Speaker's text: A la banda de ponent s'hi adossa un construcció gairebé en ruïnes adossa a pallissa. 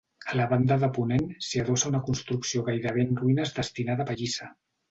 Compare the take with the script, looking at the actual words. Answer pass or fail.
fail